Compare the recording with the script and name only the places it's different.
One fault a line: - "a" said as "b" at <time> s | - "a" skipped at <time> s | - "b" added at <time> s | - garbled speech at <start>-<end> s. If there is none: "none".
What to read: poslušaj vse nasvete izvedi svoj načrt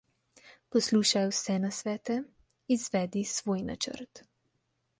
none